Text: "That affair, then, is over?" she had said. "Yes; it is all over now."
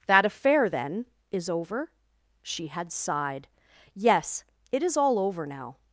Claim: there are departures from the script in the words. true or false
true